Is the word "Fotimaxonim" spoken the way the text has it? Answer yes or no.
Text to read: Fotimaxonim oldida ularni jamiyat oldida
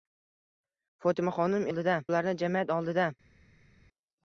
yes